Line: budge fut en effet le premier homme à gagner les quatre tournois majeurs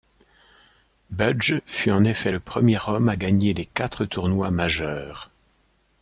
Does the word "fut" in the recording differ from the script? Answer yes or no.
no